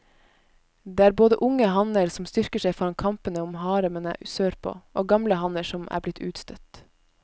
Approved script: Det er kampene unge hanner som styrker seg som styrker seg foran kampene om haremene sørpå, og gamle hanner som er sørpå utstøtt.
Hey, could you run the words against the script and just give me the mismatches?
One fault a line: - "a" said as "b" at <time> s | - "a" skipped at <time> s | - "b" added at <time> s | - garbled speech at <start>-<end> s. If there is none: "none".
- "kampene" said as "både" at 1.2 s
- "som styrker seg" skipped at 2.7 s
- "sørpå" said as "blitt" at 6.1 s